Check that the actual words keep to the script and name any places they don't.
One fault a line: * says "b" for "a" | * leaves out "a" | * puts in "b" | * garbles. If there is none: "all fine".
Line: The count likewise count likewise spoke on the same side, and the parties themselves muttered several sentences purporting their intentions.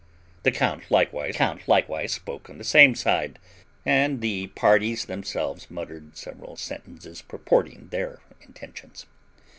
all fine